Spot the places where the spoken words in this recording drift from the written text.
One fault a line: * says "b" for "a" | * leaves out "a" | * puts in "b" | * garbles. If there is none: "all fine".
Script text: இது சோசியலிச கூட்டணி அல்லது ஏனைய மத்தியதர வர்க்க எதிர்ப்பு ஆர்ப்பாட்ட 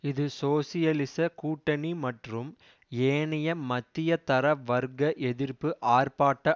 * says "மற்றும்" for "அல்லது"